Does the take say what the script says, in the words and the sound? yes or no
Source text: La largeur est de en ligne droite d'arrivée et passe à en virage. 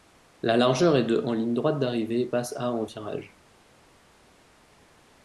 yes